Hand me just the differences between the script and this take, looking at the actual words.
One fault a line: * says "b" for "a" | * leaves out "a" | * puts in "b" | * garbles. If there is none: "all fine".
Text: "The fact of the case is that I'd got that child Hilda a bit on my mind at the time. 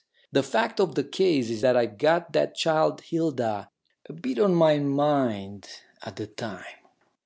all fine